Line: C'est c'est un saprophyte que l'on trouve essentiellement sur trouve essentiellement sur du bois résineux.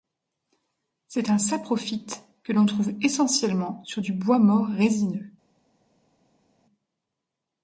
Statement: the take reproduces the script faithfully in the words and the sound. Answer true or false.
false